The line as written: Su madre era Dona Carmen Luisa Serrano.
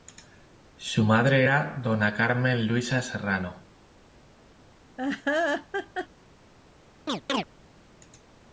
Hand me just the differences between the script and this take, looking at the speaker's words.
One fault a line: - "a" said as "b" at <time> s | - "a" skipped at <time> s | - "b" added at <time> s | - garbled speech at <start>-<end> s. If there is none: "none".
none